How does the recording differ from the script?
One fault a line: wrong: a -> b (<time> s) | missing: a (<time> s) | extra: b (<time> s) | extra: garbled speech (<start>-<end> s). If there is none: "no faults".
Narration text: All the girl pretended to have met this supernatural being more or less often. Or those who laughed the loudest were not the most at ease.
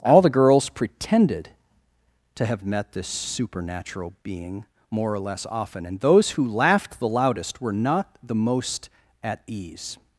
wrong: girl -> girls (0.3 s)
wrong: Or -> And (5.8 s)